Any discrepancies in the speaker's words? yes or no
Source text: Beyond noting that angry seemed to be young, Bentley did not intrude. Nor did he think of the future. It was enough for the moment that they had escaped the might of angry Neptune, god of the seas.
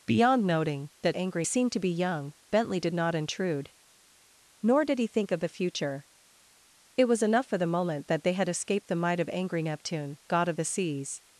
no